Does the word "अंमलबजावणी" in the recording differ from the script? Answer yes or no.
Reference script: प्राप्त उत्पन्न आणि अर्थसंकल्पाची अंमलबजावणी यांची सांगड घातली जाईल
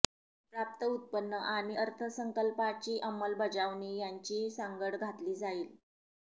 no